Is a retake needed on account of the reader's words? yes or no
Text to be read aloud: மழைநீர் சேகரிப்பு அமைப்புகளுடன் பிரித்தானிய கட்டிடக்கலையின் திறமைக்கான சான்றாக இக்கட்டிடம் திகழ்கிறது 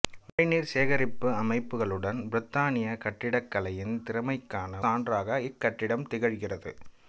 no